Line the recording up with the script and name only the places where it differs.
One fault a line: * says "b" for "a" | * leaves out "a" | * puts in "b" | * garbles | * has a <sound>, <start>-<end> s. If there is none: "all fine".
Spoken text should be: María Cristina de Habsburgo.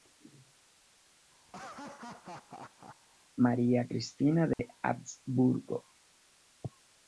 * has a laugh, 1.5-3.0 s
* has a dropout, 4.5-4.6 s